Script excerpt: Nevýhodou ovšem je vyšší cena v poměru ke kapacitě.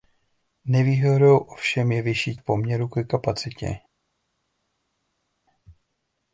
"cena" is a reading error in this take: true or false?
true